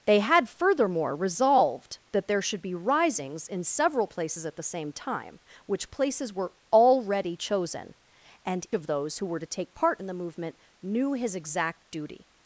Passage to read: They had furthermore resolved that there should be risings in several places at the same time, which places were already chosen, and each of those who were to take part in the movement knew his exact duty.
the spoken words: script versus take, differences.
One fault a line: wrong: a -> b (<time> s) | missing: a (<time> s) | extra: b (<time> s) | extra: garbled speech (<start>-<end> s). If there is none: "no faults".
missing: each (8.7 s)